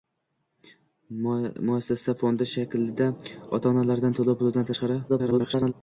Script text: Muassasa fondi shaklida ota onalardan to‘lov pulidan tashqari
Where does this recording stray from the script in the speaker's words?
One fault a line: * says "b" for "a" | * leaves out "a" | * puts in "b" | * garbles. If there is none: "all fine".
* garbles